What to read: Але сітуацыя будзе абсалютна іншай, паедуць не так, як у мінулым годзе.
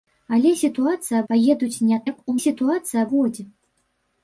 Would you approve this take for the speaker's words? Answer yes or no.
no